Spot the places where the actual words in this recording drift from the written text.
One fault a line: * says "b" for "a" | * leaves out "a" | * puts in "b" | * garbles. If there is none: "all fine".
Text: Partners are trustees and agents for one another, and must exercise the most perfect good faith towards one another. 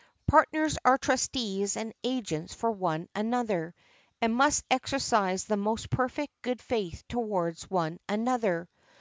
all fine